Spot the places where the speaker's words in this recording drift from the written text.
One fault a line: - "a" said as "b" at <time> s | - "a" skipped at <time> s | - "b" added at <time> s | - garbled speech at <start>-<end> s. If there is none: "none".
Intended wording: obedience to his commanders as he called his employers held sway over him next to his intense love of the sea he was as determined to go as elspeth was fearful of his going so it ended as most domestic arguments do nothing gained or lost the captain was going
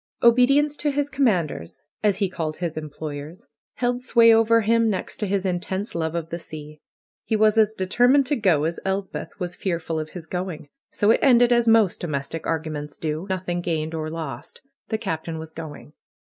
none